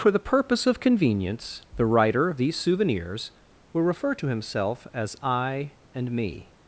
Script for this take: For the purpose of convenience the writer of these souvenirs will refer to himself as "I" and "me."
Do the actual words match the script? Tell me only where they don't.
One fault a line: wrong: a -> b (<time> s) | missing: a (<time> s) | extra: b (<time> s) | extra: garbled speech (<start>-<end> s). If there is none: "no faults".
no faults